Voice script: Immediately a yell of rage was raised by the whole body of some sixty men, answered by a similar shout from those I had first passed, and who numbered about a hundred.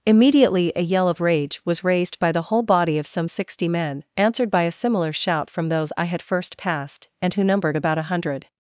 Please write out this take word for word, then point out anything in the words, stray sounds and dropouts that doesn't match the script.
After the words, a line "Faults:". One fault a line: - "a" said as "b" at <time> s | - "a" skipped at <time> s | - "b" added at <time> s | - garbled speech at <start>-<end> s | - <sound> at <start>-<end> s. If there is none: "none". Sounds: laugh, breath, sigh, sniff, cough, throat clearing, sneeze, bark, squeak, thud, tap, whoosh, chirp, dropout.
Immediately a yell of rage was raised by the whole body of some sixty men, answered by a similar shout from those I had first passed, and who numbered about a hundred.
Faults:
none